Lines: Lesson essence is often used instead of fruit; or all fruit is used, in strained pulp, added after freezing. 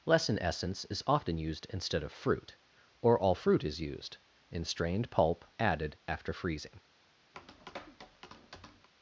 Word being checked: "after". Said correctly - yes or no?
yes